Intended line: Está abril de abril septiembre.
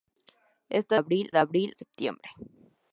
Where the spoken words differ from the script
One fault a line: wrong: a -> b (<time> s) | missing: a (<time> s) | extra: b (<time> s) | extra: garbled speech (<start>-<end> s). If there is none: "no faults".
no faults